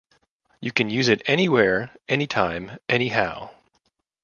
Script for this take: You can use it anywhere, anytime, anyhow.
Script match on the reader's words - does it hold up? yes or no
yes